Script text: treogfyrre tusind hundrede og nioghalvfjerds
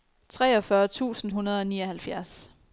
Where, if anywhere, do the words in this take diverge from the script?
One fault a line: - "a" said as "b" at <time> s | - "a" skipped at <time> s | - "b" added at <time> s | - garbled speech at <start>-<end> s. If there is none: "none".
none